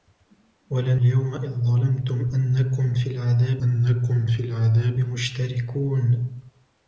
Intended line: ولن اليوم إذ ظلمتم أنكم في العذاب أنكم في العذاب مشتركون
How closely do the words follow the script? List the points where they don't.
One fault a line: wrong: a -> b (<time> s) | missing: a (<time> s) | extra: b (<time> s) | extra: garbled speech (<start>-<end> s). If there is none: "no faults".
no faults